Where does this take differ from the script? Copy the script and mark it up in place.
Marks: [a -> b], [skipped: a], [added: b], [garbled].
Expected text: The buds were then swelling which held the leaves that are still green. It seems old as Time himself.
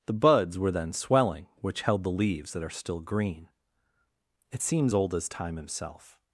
The buds were then swelling which held the leaves that are still green. It seems old as Time himself.